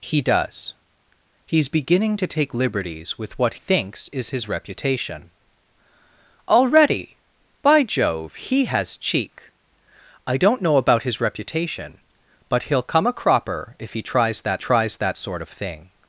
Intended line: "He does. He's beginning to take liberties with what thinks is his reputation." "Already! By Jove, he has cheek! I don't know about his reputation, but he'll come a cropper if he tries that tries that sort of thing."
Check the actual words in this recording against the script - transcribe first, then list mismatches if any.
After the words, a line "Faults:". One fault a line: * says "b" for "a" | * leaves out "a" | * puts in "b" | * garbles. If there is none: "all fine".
"He does. He's beginning to take liberties with what thinks is his reputation." "Already! By Jove, he has cheek! I don't know about his reputation, but he'll come a cropper if he tries that tries that sort of thing."
Faults:
all fine